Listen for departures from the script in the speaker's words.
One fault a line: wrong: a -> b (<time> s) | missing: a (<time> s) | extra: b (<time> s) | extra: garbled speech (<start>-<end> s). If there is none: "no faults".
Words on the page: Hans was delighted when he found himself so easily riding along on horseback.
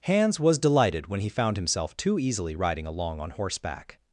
wrong: so -> too (1.9 s)